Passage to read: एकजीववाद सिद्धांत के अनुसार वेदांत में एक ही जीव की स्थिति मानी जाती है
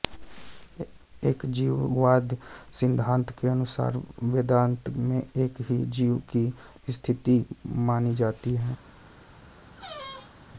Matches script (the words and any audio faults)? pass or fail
fail